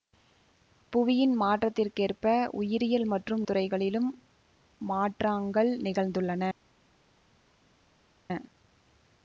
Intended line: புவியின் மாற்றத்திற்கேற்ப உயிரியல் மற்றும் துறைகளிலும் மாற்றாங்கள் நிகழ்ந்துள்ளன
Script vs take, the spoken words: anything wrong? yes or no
no